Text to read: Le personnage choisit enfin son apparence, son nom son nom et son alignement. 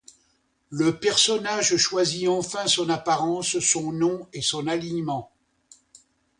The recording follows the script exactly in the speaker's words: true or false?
false